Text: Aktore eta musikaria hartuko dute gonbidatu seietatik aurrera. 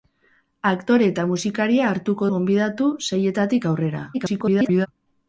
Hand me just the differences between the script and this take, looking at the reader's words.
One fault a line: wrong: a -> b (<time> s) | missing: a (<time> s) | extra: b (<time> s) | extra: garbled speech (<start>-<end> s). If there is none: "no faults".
missing: dute (2.3 s)
extra: garbled speech (4.1-4.9 s)